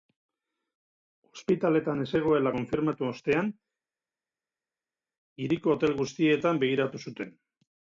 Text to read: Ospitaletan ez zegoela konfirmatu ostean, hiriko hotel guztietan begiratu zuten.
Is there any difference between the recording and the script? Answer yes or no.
no